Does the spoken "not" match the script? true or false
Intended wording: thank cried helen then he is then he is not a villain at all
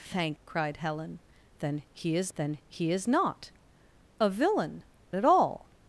true